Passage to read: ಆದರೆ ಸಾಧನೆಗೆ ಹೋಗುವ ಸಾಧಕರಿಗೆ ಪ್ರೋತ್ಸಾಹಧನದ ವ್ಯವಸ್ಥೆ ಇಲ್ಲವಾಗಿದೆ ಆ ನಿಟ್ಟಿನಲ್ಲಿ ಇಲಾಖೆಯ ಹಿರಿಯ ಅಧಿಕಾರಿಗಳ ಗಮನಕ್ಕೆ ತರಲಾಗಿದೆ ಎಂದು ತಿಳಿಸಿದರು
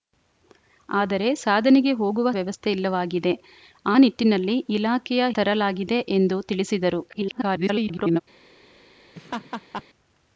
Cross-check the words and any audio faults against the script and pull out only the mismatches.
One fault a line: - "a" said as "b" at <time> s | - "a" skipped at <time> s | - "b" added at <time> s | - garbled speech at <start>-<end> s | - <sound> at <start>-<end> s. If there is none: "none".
- "ಸಾಧಕರಿಗೆ ಪ್ರೋತ್ಸಾಹಧನದ" skipped at 2.3 s
- "ಹಿರಿಯ ಅಧಿಕಾರಿಗಳ ಗಮನಕ್ಕೆ" skipped at 5.3 s
- garbled speech at 7.1-8.2 s
- laugh at 9.1-9.8 s